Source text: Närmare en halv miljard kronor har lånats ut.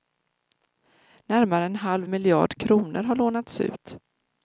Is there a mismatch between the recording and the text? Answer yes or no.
no